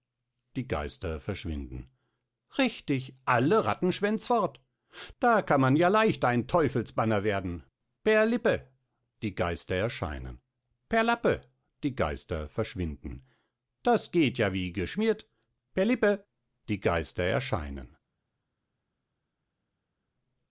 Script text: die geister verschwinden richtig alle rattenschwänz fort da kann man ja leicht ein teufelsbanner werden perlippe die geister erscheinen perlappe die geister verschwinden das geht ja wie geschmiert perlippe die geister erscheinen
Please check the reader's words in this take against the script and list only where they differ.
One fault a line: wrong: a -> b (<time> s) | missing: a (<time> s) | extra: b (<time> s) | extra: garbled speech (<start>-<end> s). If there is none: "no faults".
no faults